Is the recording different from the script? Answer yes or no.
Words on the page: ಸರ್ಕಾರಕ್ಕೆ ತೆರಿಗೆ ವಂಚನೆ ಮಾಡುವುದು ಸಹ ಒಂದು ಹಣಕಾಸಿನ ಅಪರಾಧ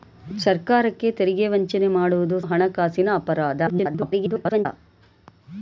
yes